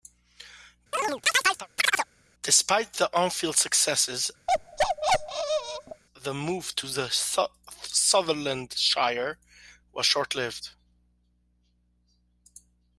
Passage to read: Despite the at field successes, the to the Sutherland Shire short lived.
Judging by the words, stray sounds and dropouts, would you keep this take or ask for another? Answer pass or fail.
fail